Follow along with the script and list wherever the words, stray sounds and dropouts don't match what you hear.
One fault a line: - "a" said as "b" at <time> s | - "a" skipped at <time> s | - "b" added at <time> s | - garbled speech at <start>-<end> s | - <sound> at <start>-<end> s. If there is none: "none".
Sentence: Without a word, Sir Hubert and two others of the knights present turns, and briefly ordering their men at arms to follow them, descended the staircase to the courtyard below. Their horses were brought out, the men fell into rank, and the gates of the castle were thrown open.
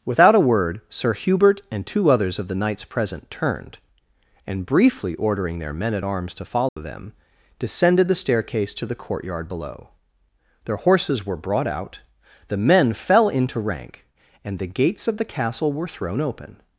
- "turns" said as "turned" at 3.3 s
- dropout at 6.7-6.8 s